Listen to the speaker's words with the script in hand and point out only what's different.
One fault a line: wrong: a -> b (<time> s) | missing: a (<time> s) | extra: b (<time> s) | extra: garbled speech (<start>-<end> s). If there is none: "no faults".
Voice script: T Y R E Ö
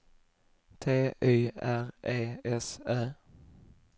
extra: S (2.4 s)